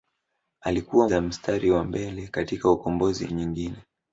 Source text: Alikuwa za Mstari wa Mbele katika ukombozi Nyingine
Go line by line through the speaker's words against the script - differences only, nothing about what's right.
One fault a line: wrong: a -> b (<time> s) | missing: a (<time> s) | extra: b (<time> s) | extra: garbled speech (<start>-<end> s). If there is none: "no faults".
no faults